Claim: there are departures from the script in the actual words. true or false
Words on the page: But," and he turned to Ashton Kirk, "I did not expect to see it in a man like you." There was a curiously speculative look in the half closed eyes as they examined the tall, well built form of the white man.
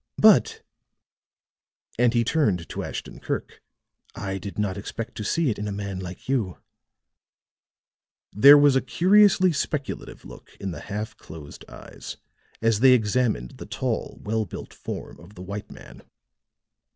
false